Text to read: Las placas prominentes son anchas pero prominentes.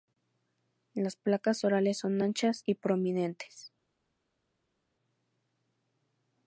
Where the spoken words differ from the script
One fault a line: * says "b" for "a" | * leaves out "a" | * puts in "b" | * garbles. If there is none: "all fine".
* says "orales" for "prominentes"
* says "y" for "pero"